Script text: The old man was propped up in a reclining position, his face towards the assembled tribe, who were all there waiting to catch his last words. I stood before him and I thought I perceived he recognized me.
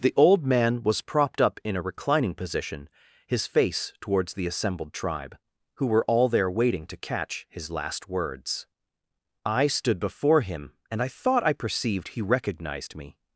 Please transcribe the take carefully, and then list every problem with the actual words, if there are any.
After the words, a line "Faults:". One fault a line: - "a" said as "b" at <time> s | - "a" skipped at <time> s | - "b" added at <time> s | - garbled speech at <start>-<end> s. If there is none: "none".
The old man was propped up in a reclining position, his face towards the assembled tribe, who were all there waiting to catch his last words. I stood before him and I thought I perceived he recognized me.
Faults:
none